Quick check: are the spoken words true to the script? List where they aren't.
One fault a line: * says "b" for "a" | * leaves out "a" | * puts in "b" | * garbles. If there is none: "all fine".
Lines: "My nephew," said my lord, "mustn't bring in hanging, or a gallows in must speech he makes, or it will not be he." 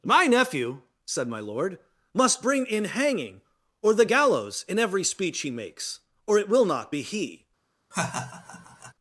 * says "must" for "mustn't"
* says "the" for "a"
* says "every" for "must"